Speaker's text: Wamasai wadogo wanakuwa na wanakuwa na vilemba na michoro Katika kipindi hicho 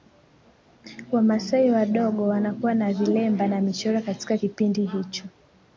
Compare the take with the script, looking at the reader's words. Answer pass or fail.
fail